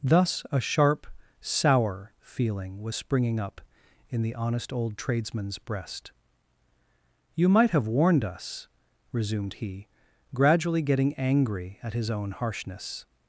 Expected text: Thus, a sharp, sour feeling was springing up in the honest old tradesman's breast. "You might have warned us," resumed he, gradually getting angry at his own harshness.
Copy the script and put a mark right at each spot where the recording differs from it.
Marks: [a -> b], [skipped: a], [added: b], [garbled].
Thus, a sharp, sour feeling was springing up in the honest old tradesman's breast. "You might have warned us," resumed he, gradually getting angry at his own harshness.